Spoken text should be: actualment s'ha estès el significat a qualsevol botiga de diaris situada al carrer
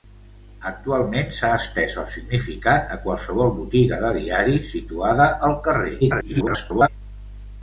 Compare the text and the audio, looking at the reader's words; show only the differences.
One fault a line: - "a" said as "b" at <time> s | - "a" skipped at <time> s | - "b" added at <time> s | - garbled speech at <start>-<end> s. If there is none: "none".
- garbled speech at 6.0-6.9 s